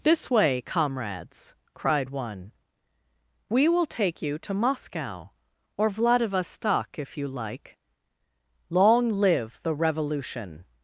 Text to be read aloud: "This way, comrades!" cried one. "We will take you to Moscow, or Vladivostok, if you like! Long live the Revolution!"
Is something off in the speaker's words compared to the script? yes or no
no